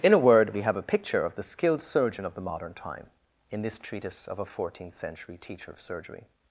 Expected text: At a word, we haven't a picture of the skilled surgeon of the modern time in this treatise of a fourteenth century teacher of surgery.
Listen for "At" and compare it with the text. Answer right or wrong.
wrong